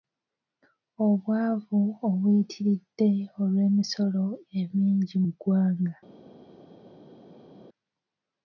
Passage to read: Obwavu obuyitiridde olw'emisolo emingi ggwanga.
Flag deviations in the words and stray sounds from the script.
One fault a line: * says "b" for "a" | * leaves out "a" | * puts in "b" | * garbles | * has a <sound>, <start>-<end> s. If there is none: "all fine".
all fine